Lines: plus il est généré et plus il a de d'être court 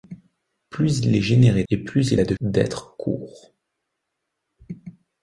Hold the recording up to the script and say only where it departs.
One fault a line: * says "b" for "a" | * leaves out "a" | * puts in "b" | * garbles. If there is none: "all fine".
all fine